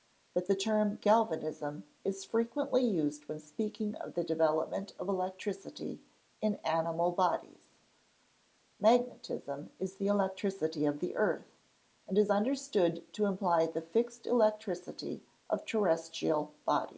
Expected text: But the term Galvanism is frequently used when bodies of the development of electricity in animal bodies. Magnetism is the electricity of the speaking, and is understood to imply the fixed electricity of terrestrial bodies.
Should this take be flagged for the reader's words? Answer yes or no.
yes